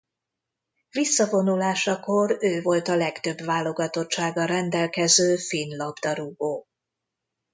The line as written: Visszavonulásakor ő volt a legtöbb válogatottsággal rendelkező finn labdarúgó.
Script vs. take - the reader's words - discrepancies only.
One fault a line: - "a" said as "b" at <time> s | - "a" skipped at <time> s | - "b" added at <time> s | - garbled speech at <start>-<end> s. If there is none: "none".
none